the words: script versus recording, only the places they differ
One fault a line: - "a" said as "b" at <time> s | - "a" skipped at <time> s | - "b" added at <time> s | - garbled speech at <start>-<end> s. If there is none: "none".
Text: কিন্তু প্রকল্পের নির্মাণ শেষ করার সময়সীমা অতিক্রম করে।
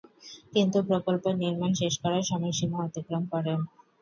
none